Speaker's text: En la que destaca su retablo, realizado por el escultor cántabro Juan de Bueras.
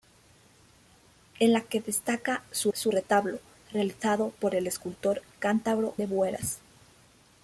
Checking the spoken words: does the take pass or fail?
fail